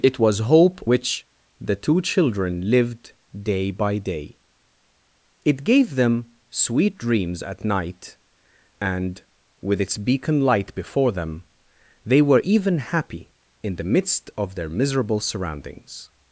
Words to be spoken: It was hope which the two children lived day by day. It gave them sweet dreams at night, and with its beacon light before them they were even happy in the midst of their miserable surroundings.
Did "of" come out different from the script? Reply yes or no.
no